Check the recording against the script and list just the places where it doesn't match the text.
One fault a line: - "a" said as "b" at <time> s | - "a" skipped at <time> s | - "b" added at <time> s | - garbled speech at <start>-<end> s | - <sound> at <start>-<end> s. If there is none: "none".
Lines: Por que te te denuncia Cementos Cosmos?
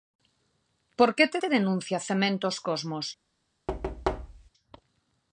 - thud at 3.7-4.5 s